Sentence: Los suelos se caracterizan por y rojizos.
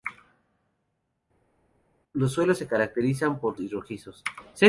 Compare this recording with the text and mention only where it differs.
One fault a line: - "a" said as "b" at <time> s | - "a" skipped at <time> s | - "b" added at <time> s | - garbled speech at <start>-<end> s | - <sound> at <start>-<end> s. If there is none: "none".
none